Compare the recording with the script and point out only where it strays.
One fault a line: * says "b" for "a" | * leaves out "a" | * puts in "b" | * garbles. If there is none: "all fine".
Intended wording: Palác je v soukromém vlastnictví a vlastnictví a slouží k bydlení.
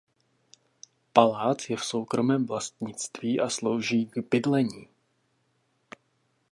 * leaves out "vlastnictví a"